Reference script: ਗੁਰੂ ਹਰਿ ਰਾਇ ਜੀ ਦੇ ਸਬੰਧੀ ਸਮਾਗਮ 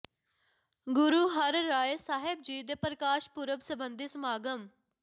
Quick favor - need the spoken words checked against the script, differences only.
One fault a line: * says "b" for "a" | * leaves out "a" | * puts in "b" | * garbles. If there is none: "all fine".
* puts in "ਸਾਹਿਬ"
* puts in "ਪ੍ਰਕਾਸ਼ ਪੁਰਬ"